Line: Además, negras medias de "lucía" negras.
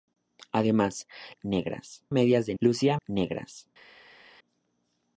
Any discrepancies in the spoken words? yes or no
no